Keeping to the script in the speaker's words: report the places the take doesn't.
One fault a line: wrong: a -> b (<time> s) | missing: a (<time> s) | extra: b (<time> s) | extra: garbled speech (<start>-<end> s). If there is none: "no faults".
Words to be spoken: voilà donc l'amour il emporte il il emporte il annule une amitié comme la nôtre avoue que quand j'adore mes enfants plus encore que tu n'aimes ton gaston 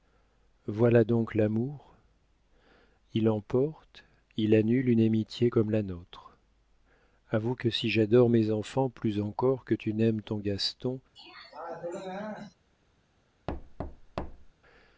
missing: il emporte il (4.5 s)
wrong: quand -> si (7.7 s)